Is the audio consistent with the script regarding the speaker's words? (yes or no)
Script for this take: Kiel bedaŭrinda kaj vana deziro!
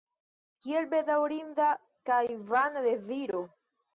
yes